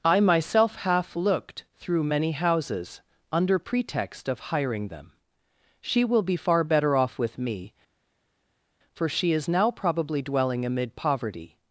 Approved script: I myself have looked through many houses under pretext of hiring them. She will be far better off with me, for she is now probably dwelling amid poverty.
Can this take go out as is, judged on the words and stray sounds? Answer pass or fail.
fail